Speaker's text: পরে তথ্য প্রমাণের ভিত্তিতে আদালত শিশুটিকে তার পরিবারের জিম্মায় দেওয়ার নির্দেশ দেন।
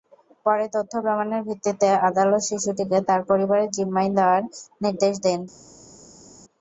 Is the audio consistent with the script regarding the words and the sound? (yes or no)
yes